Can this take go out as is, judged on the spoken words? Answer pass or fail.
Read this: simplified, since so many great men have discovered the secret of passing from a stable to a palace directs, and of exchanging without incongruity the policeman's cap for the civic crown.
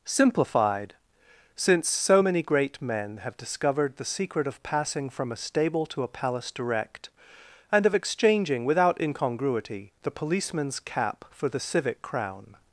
fail